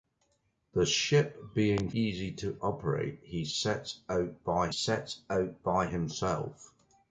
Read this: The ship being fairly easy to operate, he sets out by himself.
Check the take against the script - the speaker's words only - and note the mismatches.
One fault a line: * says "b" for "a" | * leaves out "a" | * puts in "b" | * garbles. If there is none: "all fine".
* leaves out "fairly"
* puts in "sets out by"